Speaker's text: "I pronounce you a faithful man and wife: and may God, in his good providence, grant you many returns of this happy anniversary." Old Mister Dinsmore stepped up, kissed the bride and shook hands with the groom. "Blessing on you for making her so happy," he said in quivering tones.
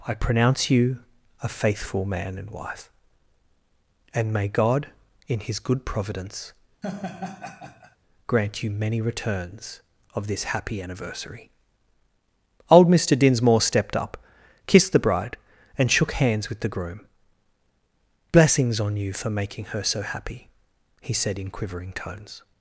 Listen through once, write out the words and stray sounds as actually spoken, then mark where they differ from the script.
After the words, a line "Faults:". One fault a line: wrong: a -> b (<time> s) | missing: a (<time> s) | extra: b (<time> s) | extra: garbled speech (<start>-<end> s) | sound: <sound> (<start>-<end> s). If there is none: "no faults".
"I pronounce you a faithful man and wife: and may God, in his good providence, grant you many returns of this happy anniversary." Old Mister Dinsmore stepped up, kissed the bride and shook hands with the groom. "Blessings on you for making her so happy," he said in quivering tones.
Faults:
sound: laugh (6.8-8.0 s)
wrong: Blessing -> Blessings (18.3 s)